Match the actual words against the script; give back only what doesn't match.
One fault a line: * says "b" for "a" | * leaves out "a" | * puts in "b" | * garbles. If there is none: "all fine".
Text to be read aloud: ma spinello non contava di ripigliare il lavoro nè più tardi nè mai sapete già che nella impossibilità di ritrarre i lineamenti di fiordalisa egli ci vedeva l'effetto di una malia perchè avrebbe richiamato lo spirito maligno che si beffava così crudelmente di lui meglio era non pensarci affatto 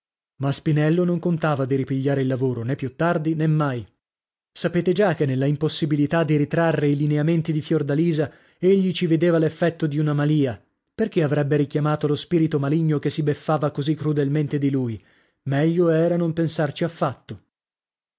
all fine